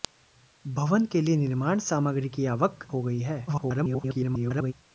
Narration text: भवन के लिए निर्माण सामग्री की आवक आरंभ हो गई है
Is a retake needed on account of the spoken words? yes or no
yes